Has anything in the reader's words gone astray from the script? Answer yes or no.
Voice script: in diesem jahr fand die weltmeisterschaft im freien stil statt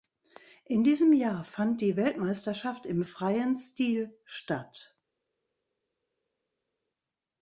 no